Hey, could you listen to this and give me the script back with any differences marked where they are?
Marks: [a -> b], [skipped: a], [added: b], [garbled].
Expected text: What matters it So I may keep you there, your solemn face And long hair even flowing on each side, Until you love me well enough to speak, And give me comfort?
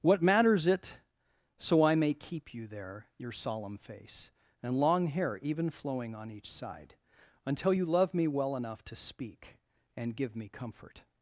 What matters it So I may keep you there, your solemn face And long hair even flowing on each side, Until you love me well enough to speak, And give me comfort?